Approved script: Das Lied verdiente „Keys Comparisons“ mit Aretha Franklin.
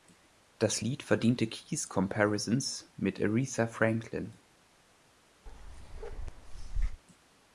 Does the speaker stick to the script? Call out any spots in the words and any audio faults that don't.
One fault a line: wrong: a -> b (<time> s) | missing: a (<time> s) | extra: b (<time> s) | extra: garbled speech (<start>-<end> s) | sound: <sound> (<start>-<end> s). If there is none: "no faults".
sound: bark (5.5-7.0 s)